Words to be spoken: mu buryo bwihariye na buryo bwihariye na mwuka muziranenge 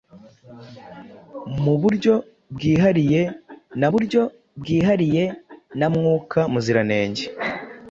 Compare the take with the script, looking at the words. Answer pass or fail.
pass